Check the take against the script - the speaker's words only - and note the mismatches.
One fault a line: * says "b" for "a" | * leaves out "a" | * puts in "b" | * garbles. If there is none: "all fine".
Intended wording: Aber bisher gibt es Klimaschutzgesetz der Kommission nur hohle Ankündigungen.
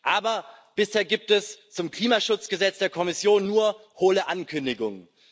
* puts in "zum"